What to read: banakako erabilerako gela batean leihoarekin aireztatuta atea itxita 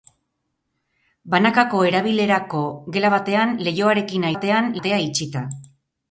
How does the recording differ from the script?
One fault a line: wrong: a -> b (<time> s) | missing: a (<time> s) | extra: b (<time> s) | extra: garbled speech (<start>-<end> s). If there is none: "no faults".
wrong: aireztatuta -> batean (4.3 s)